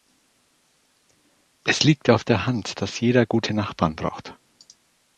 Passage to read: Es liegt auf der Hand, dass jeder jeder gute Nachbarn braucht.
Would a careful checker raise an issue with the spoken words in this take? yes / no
yes